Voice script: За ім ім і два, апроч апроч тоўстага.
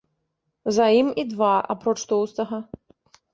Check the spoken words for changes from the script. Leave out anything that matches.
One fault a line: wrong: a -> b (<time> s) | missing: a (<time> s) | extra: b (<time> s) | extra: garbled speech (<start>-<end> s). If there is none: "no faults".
missing: ім (1.1 s)
missing: апроч (1.9 s)